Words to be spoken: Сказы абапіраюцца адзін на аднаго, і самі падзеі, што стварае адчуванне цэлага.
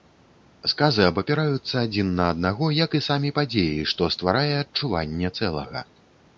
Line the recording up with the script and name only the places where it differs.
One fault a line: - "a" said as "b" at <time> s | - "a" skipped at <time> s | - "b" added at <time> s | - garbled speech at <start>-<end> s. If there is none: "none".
- "як" added at 2.8 s